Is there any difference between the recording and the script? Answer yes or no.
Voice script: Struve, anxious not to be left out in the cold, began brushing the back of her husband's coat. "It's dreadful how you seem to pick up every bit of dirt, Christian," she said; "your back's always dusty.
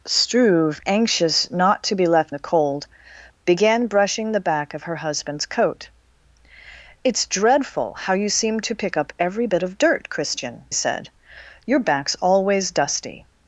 yes